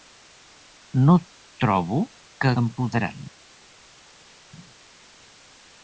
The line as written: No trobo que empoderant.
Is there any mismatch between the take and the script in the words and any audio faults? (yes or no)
no